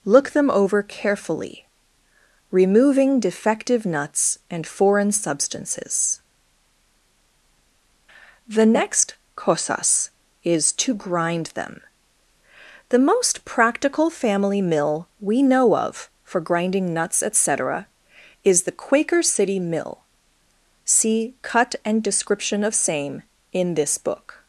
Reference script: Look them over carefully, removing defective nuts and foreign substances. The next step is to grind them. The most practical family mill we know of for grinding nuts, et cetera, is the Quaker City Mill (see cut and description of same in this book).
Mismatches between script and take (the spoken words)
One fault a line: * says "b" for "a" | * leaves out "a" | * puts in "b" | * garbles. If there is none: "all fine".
* says "cosas" for "step"